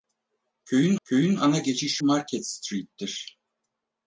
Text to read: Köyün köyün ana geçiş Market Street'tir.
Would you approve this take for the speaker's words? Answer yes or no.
yes